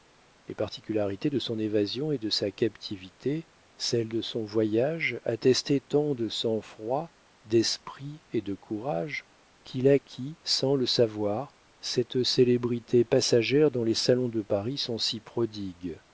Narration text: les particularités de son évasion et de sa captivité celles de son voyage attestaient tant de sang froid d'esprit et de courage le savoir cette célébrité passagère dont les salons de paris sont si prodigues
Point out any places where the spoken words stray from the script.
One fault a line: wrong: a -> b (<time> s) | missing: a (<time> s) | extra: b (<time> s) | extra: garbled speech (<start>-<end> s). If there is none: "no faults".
extra: qu'il acquit sans (9.6 s)